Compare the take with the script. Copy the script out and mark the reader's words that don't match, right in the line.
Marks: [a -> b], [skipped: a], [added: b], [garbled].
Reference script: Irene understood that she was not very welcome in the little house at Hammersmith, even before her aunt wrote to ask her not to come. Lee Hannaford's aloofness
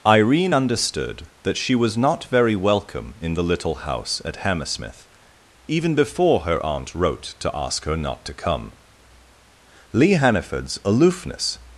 Irene understood that she was not very welcome in the little house at Hammersmith, even before her aunt wrote to ask her not to come. Lee Hannaford's aloofness